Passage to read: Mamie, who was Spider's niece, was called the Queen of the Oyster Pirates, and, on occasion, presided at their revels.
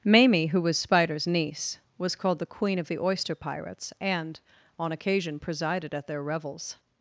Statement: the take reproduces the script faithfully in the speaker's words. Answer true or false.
true